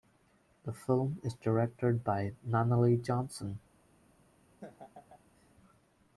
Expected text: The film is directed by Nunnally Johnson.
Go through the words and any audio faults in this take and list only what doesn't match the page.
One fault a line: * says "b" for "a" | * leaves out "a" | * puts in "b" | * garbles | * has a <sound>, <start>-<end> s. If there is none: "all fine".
* has a laugh, 4.6-5.5 s